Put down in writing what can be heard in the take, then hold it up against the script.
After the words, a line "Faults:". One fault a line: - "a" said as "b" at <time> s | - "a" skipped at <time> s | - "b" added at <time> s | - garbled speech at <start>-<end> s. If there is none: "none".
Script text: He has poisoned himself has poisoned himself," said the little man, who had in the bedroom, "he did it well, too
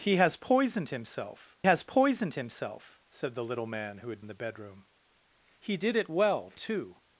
He has poisoned himself has poisoned himself," said the little man, who had in the bedroom, "he did it well, too
Faults:
none